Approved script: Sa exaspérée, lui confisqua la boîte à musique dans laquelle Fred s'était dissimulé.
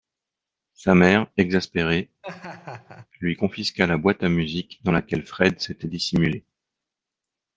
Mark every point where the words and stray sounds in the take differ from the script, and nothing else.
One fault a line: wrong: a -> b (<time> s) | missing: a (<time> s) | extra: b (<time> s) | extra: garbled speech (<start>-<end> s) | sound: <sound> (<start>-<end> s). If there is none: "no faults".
extra: mère (0.9 s)
sound: laugh (2.2-3.1 s)